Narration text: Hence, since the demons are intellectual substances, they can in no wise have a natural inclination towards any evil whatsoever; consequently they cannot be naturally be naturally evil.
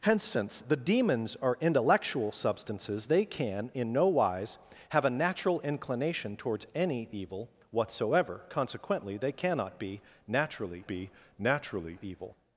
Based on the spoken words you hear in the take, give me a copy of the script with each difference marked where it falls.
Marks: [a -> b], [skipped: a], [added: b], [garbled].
Hence, since the demons are intellectual substances, they can in no wise have a natural inclination towards any evil whatsoever; consequently they cannot be naturally be naturally evil.